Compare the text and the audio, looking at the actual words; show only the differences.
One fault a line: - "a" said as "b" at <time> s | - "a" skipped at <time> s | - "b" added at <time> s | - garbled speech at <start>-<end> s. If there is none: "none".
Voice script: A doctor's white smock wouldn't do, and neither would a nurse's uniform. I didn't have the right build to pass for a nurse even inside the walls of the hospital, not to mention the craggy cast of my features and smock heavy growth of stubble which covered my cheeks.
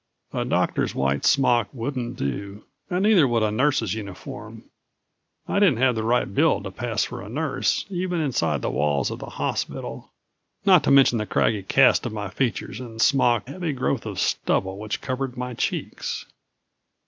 none